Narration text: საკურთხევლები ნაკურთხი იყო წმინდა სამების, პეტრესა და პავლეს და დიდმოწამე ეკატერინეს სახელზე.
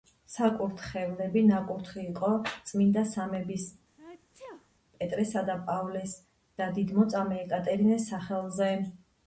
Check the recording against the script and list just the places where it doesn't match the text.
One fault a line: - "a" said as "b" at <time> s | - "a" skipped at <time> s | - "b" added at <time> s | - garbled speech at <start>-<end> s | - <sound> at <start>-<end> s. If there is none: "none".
- sneeze at 4.0-4.7 s